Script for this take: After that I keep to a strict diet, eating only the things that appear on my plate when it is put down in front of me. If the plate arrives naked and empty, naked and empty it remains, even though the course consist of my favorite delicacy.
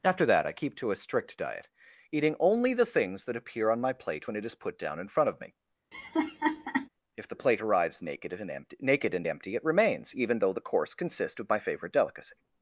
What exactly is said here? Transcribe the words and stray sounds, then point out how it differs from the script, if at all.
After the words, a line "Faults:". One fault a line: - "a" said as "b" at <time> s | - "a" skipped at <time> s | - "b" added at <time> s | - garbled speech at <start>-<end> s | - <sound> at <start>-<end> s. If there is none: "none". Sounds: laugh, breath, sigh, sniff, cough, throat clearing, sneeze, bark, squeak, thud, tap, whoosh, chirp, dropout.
After that I keep to a strict diet, eating only the things that appear on my plate when it is put down in front of me. If the plate arrives naked and empty, naked and empty it remains, even though the course consists of my favorite delicacy.
Faults:
- laugh at 5.9-6.9 s
- "consist" said as "consists" at 10.9 s